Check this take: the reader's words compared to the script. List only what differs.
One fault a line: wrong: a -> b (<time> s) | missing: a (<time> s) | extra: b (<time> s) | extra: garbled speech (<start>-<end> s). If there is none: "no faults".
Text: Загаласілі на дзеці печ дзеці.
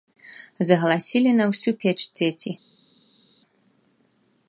wrong: дзеці -> ўсю (1.5 s)